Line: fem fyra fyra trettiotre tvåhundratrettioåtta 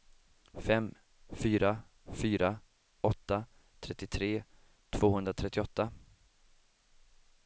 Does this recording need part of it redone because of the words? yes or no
yes